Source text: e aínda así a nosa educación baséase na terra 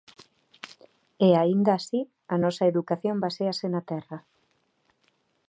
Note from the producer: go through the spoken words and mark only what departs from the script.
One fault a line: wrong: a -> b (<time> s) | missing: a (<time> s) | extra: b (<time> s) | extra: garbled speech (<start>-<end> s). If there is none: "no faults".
no faults